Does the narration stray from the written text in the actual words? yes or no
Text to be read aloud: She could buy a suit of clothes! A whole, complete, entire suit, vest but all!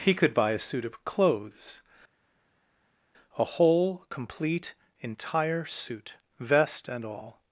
yes